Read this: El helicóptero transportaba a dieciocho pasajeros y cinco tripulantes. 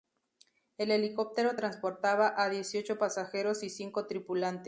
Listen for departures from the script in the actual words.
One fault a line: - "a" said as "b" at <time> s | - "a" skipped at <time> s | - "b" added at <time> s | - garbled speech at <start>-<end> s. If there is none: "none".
none